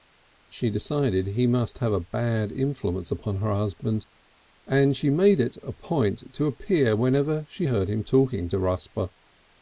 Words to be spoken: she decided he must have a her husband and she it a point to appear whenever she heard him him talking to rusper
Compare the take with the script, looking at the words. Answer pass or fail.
fail